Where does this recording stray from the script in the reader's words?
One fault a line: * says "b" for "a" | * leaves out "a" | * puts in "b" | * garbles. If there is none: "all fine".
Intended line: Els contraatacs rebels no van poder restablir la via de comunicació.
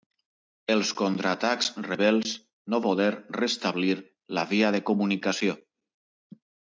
* leaves out "van"